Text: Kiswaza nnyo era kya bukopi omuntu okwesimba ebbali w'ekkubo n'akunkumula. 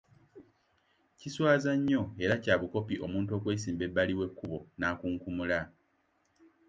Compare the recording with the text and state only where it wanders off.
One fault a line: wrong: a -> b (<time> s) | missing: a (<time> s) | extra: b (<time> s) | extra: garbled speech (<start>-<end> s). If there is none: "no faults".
no faults